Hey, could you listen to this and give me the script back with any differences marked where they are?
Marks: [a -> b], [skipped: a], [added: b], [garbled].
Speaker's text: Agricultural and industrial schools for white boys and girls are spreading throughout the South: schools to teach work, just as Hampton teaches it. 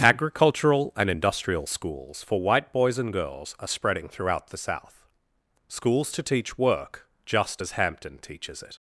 Agricultural and industrial schools for white boys and girls are spreading throughout the South: schools to teach work, just as Hampton teaches it.